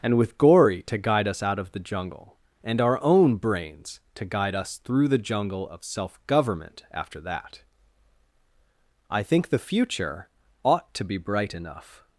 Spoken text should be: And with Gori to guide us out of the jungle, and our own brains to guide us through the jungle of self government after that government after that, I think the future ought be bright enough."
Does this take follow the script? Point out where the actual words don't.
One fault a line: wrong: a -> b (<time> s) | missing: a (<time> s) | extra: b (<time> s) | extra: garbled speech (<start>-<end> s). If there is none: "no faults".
missing: government after that (7.6 s)
extra: to (10.9 s)